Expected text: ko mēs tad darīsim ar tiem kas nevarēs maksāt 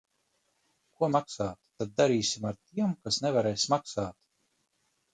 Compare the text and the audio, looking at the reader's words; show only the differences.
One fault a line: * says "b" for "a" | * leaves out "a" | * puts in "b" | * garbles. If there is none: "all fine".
* says "maksāt" for "mēs"